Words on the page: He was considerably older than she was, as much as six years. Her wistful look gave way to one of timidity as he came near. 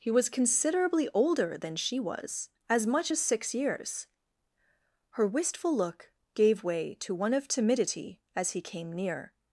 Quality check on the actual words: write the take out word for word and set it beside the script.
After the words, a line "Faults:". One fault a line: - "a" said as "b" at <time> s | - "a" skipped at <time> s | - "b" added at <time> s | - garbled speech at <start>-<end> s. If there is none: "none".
He was considerably older than she was, as much as six years. Her wistful look gave way to one of timidity as he came near.
Faults:
none